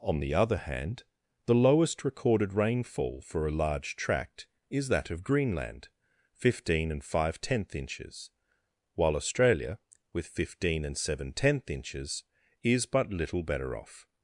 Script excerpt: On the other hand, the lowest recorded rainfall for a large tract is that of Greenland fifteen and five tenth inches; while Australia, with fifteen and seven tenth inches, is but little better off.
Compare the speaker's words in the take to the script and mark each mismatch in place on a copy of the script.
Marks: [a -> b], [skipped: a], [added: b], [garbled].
On the other hand, the lowest recorded rainfall for a large tract is that of Greenland fifteen and five tenth inches; while Australia, with fifteen and seven tenth inches, is but little better off.